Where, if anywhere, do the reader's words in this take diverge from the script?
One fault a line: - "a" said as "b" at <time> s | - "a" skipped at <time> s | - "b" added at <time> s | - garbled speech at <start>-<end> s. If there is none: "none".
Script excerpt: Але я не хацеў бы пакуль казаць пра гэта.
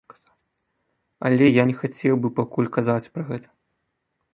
none